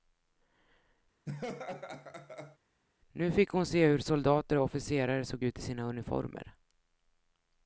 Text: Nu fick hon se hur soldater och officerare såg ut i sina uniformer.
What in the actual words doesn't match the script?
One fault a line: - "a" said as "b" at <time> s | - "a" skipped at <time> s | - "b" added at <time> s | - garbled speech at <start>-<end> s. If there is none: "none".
none